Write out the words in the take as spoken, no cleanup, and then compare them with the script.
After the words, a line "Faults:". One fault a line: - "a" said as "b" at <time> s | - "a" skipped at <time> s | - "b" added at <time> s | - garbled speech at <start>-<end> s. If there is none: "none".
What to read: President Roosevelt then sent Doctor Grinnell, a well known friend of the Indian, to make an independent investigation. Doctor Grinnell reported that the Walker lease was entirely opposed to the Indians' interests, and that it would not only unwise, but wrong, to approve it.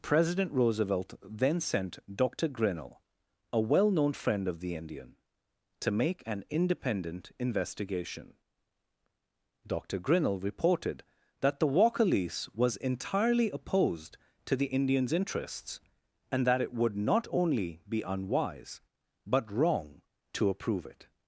President Roosevelt then sent Doctor Grinnell, a well known friend of the Indian, to make an independent investigation. Doctor Grinnell reported that the Walker lease was entirely opposed to the Indians' interests, and that it would not only be unwise, but wrong, to approve it.
Faults:
- "be" added at 17.9 s